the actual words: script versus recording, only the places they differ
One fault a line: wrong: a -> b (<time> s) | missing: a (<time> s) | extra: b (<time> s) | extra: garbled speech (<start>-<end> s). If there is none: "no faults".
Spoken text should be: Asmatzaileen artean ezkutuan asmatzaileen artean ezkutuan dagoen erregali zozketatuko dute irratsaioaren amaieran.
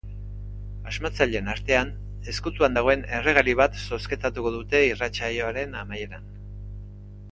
missing: asmatzaileen artean ezkutuan (2.8 s)
extra: bat (3.6 s)